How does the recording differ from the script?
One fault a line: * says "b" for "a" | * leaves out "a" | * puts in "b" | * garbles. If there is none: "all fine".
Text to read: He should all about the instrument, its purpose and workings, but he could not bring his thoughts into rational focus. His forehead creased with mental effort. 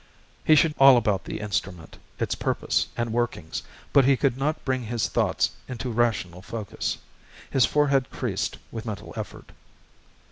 all fine